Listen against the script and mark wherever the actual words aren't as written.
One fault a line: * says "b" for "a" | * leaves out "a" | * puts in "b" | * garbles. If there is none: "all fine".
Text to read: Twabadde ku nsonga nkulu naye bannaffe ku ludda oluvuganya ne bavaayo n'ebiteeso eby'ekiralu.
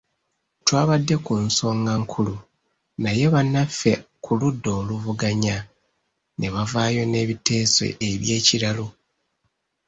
all fine